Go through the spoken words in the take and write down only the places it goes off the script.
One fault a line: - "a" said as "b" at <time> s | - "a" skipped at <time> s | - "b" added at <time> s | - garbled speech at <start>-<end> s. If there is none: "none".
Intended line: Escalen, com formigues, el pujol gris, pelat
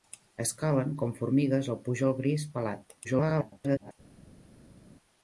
- garbled speech at 3.0-3.9 s